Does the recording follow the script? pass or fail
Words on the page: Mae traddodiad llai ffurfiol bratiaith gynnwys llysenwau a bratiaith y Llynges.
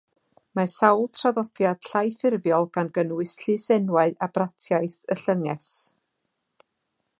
fail